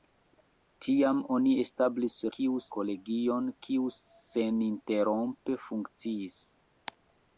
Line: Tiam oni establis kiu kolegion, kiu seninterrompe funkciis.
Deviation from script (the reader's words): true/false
false